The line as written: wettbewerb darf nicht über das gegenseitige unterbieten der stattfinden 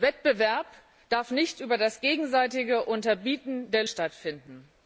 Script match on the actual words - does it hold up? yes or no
yes